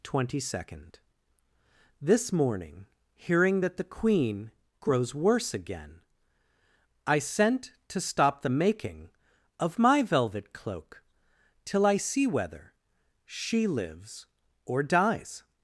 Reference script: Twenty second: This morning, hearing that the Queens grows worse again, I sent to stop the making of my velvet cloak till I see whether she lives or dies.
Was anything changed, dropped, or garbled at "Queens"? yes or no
yes